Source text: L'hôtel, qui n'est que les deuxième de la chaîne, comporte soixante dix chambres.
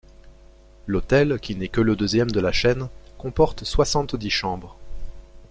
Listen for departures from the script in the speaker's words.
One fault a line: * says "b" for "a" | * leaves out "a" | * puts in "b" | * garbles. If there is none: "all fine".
* says "le" for "les"